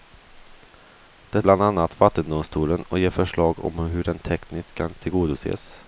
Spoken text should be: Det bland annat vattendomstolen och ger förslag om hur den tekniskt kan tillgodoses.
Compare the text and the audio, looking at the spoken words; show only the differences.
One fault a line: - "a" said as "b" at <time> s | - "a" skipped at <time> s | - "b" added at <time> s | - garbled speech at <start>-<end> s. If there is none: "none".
none